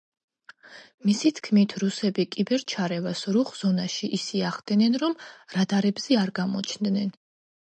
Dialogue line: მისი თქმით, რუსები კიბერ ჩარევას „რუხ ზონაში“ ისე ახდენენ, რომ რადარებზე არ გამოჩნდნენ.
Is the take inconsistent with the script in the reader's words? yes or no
no